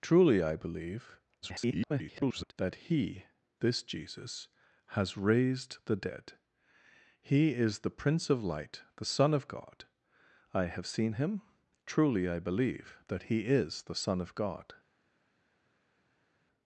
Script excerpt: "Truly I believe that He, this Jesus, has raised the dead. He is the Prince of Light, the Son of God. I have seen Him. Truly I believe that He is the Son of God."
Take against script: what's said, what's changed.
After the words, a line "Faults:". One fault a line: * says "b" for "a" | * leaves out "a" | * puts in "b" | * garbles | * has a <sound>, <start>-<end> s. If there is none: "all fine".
"Truly I believe [garbled] that He, this Jesus, has raised the dead. He is the Prince of Light, the Son of God. I have seen Him. Truly I believe that He is the Son of God."
Faults:
* garbles